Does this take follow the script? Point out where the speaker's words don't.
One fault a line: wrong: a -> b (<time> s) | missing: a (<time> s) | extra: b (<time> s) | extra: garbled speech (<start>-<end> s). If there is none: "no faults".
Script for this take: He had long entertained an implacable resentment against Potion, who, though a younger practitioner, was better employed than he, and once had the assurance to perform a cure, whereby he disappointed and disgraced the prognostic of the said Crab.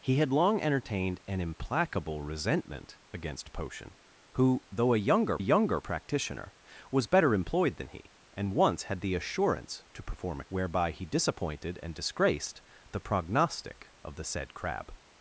extra: a younger (5.4 s)
missing: cure (10.4 s)